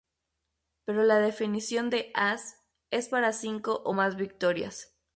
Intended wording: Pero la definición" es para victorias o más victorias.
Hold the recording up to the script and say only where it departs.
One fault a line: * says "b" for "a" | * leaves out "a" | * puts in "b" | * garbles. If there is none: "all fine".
* puts in "de as"
* says "cinco" for "victorias"